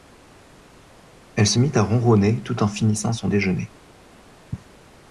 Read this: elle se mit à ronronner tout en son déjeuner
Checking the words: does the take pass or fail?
fail